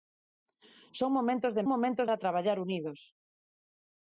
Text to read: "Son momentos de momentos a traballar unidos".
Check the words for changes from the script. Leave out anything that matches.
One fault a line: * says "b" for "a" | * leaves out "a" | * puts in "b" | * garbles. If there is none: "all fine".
all fine